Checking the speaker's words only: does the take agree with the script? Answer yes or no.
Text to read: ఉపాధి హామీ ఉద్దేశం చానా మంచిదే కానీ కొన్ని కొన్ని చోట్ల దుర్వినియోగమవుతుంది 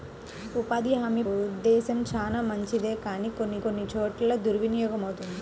yes